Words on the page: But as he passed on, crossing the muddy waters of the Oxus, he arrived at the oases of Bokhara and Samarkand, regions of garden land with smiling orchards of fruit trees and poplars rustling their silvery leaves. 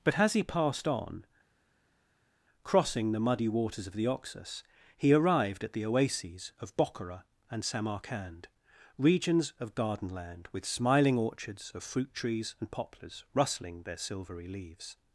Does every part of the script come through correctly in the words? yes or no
yes